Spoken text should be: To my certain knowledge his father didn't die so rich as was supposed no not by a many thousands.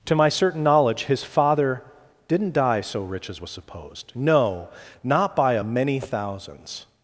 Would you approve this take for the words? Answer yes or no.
yes